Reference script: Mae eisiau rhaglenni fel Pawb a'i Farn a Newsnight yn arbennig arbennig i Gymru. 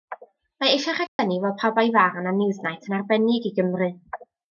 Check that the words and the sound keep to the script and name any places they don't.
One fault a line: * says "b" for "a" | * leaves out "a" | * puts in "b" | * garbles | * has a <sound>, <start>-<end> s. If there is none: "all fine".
* has a dropout, 1.1-1.2 s
* leaves out "arbennig"